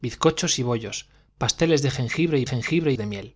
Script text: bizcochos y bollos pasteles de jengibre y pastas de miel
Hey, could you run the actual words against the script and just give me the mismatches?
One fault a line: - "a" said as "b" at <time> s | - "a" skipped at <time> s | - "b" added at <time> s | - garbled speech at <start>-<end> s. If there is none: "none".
- "pastas" said as "jengibre" at 2.4 s